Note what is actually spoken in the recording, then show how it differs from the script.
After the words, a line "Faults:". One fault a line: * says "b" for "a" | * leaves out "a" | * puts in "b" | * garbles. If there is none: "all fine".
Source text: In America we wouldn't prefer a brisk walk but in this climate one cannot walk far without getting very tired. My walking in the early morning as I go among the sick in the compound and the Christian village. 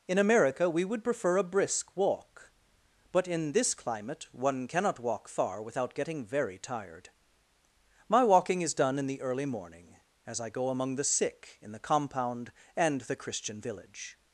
In America we would prefer a brisk walk but in this climate one cannot walk far without getting very tired. My walking is done in the early morning as I go among the sick in the compound and the Christian village.
Faults:
* says "would" for "wouldn't"
* puts in "is done"